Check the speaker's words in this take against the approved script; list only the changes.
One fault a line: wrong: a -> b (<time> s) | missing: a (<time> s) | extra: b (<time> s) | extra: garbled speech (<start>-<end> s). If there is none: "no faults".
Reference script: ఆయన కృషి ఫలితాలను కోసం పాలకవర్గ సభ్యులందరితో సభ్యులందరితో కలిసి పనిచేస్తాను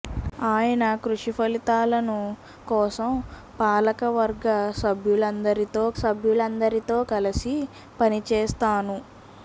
no faults